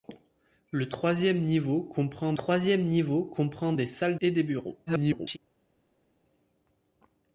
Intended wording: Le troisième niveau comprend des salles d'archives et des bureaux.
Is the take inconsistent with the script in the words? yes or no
yes